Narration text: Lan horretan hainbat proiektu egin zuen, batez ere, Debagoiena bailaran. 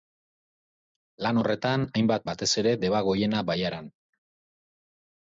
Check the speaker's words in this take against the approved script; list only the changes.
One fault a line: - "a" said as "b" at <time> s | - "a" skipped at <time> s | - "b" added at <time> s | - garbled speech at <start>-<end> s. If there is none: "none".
- "proiektu egin zuen" skipped at 2.2 s